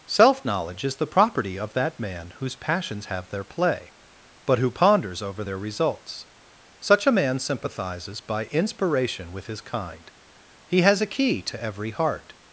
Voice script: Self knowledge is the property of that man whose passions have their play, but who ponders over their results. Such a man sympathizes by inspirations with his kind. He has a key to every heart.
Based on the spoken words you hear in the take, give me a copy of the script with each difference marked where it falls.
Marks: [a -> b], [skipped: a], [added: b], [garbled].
Self knowledge is the property of that man whose passions have their play, but who ponders over their results. Such a man sympathizes by [inspirations -> inspiration] with his kind. He has a key to every heart.